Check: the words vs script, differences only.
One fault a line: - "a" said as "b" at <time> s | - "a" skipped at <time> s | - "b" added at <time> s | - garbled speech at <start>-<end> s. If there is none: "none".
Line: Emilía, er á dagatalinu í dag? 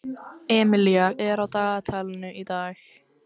none